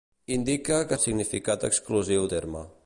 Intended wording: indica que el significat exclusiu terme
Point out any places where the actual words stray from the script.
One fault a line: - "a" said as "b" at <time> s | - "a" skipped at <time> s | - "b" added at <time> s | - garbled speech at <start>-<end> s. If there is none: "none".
none